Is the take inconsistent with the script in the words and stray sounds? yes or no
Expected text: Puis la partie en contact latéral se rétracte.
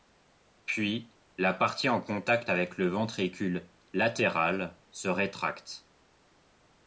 yes